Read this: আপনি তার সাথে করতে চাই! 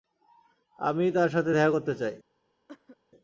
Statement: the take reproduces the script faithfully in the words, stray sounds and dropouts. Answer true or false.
false